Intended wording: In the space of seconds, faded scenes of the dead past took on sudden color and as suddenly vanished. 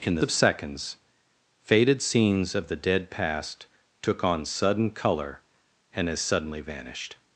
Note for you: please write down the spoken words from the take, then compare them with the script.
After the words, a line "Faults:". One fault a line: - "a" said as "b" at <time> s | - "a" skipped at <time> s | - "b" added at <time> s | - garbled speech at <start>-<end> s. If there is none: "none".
In the of seconds, faded scenes of the dead past took on sudden color and as suddenly vanished.
Faults:
- "space" skipped at 0.2 s